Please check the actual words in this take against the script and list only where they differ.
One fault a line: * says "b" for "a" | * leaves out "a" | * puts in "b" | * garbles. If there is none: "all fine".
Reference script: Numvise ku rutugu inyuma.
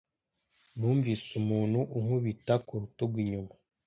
* puts in "umuntu unkubita"